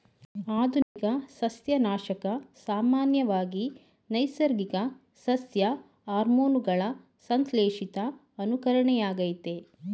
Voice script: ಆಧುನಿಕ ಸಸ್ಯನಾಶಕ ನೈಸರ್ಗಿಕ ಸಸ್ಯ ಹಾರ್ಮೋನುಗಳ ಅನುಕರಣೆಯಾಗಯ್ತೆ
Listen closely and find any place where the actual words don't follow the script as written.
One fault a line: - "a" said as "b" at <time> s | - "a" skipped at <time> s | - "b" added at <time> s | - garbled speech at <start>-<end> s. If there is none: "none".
- "ಸಾಮಾನ್ಯವಾಗಿ" added at 2.6 s
- "ಸಂಶ್ಲೇಷಿತ" added at 7.3 s